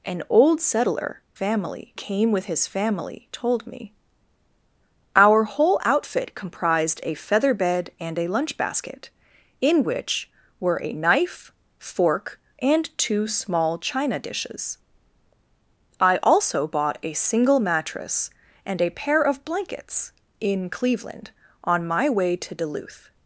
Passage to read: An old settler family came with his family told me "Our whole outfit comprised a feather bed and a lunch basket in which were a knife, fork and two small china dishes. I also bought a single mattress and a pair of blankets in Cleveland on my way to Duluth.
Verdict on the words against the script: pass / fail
pass